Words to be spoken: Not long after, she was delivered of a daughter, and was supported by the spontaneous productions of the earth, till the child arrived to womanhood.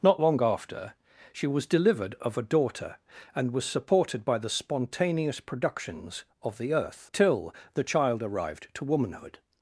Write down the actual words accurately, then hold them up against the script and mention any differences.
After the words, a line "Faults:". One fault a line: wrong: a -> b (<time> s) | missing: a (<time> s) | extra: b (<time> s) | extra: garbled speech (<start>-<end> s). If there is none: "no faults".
Not long after, she was delivered of a daughter, and was supported by the spontaneous productions of the earth, till the child arrived to womanhood.
Faults:
no faults